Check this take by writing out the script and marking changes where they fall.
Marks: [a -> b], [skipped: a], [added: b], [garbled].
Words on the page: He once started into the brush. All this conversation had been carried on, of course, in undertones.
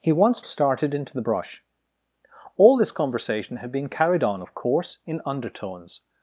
He once started into the brush. All this conversation had been carried on, of course, in undertones.